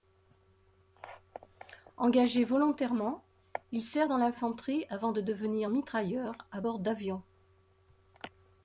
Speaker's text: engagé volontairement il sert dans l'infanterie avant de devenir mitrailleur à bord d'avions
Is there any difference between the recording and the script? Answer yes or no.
no